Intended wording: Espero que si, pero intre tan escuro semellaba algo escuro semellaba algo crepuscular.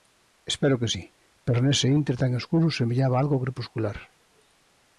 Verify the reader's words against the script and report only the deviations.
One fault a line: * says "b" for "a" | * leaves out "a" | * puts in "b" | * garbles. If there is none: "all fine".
* puts in "nese"
* leaves out "escuro semellaba algo"